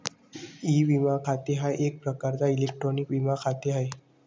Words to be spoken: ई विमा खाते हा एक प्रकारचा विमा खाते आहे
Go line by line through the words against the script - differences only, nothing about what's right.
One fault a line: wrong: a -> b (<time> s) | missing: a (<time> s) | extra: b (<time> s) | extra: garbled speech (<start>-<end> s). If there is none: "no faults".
extra: इलेक्ट्रॉनिक (2.5 s)